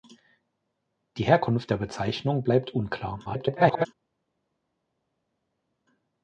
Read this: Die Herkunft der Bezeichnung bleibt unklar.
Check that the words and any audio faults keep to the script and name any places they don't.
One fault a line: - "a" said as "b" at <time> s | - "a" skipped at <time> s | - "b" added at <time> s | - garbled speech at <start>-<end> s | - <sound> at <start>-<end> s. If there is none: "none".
- garbled speech at 3.2-3.9 s